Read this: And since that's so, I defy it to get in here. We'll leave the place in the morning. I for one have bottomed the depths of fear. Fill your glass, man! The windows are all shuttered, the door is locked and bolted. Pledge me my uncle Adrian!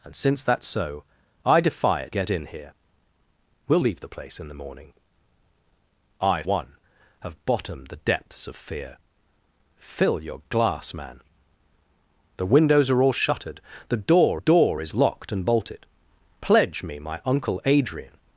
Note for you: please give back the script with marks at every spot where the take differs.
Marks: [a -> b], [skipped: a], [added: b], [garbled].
And since that's so, I defy it [skipped: to] get in here. We'll leave the place in the morning. I [skipped: for] one have bottomed the depths of fear. Fill your glass, man! The windows are all shuttered, the door [added: door] is locked and bolted. Pledge me my uncle Adrian!